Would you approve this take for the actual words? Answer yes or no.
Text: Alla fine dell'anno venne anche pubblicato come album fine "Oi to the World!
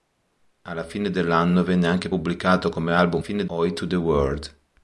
yes